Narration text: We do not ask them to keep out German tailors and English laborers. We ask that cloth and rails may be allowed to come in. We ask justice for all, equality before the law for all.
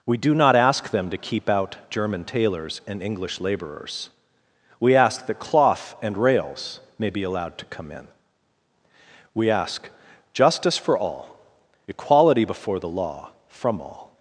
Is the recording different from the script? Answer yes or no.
yes